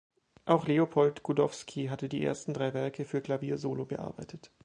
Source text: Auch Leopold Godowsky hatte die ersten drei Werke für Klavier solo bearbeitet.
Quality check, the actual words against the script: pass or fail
pass